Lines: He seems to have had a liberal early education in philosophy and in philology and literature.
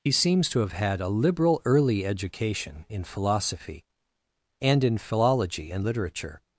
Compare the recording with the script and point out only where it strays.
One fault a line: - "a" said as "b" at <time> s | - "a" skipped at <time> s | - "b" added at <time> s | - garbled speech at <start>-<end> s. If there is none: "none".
none